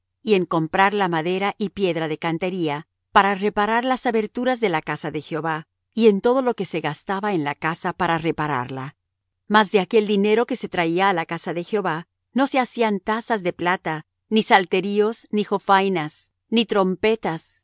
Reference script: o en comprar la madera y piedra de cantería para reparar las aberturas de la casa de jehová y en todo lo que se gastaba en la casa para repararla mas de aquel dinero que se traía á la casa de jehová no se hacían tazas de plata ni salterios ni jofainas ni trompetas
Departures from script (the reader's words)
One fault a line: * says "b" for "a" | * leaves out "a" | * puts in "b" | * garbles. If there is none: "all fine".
* says "y" for "o"